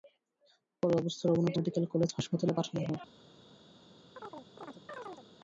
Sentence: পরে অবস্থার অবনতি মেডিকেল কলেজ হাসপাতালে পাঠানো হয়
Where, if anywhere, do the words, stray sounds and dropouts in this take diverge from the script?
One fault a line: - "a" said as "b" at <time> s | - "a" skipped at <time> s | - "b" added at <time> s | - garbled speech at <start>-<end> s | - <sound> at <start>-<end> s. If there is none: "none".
- chirp at 4.2-5.3 s